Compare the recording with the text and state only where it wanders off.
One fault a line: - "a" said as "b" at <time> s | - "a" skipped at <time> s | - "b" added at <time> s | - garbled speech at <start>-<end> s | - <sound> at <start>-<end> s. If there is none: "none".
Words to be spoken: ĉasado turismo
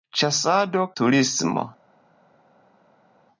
none